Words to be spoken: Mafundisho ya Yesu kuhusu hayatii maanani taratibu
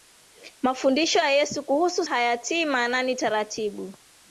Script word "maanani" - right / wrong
right